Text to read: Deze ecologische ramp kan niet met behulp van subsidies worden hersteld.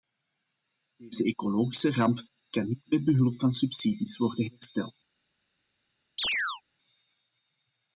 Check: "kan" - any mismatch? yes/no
no